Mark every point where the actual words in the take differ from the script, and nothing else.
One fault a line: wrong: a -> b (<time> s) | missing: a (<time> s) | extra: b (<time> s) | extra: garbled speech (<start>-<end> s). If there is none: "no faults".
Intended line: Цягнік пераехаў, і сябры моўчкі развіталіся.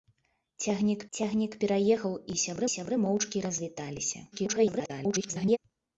extra: цягнік (1.2 s)
extra: сябры (2.7 s)
extra: garbled speech (4.3-5.6 s)